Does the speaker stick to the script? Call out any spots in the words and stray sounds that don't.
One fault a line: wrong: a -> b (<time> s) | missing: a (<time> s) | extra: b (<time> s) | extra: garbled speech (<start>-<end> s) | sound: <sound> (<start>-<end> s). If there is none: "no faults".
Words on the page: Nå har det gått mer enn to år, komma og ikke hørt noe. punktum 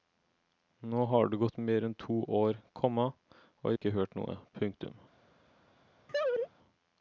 sound: laugh (6.1-6.5 s)